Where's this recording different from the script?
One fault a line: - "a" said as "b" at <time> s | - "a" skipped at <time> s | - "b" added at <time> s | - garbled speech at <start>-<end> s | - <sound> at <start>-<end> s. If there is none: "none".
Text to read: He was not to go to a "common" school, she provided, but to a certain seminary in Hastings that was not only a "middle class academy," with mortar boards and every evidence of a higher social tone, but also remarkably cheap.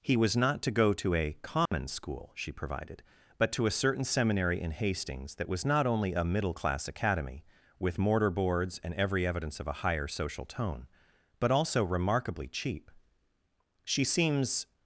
- dropout at 1.7-1.7 s
- "She seems" added at 13.8 s